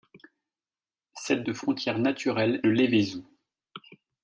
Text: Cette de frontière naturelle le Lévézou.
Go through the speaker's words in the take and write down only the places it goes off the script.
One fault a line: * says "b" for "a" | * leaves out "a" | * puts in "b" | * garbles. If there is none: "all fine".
all fine